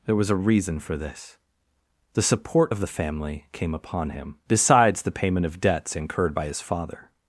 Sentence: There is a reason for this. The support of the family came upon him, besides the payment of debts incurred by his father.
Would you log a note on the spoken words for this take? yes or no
yes